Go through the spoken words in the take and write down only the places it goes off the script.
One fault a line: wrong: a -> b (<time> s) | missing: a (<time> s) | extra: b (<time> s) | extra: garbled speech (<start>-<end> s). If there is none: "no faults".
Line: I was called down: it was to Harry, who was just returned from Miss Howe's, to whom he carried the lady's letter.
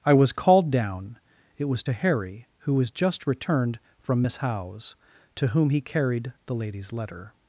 no faults